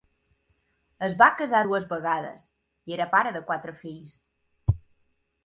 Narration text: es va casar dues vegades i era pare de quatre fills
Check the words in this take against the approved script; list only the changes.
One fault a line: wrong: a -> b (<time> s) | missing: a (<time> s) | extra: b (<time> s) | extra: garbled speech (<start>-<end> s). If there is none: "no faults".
no faults